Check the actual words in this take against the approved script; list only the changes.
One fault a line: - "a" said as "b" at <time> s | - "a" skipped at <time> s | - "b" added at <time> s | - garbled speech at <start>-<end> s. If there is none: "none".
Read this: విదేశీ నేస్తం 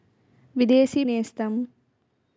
none